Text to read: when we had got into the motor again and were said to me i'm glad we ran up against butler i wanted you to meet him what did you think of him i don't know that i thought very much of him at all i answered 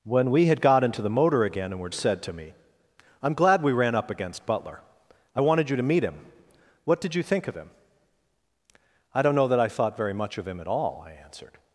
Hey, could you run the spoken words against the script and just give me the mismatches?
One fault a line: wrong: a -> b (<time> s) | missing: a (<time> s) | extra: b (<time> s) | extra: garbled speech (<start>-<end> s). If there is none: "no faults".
no faults